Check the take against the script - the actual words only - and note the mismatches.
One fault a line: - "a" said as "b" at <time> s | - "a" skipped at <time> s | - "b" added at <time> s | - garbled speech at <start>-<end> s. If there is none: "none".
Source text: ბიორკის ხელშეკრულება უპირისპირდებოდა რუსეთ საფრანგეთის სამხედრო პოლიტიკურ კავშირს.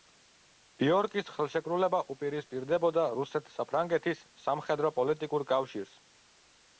none